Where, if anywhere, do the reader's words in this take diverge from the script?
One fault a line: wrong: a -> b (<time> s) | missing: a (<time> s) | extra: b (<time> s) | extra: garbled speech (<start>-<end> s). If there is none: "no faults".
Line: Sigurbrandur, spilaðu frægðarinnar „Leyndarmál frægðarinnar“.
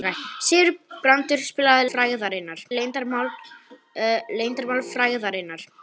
no faults